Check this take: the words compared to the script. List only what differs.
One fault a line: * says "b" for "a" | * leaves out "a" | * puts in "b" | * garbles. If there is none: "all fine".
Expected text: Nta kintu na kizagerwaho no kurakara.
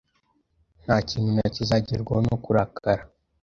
all fine